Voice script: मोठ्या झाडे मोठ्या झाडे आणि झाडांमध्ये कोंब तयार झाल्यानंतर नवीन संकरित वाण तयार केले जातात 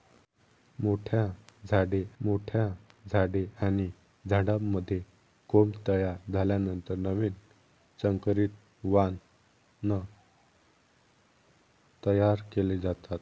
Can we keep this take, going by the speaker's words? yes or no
yes